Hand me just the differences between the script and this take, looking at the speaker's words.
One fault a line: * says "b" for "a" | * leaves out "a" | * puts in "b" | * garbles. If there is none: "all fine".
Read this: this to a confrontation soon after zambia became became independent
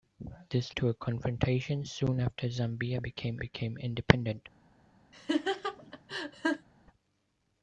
all fine